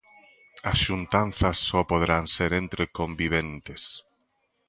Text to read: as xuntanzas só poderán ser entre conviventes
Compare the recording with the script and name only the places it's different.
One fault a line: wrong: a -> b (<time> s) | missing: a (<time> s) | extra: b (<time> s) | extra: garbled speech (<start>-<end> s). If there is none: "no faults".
no faults